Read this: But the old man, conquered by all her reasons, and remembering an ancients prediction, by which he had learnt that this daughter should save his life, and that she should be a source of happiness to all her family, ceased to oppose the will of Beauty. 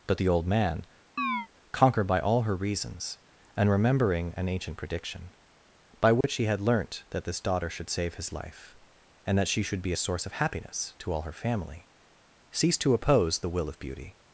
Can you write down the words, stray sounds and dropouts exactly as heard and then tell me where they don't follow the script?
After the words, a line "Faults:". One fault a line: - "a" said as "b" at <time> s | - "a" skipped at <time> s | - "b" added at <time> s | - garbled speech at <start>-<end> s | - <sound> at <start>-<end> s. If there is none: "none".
But the old man, conquered by all her reasons, and remembering an ancient prediction, by which he had learnt that this daughter should save his life, and that she should be a source of happiness to all her family, ceased to oppose the will of Beauty.
Faults:
- chirp at 1.2-1.5 s
- "ancients" said as "ancient" at 4.5 s
- dropout at 6.2-6.2 s